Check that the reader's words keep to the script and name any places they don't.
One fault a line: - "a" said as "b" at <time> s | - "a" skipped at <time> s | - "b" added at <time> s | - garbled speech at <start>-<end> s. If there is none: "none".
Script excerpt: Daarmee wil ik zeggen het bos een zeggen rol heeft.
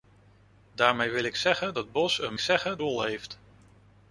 none